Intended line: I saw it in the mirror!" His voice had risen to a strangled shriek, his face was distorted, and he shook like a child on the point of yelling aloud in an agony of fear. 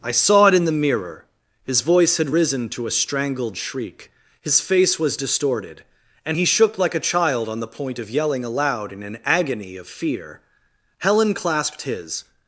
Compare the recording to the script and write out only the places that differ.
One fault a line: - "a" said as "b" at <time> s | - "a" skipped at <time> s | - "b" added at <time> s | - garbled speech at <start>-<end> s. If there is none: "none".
- "Helen clasped his" added at 11.0 s